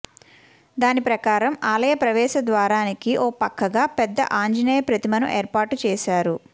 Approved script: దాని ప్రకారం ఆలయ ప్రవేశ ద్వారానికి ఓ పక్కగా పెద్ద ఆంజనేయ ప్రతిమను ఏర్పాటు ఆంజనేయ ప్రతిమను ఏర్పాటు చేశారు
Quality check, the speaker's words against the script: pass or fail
fail